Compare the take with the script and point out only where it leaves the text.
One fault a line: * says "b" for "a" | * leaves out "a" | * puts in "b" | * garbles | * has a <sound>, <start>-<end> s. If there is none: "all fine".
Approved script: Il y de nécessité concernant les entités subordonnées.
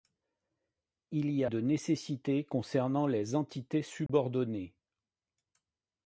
* has a dropout, 4.1-4.1 s